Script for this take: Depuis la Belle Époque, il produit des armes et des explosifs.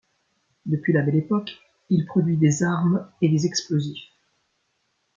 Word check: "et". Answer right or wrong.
right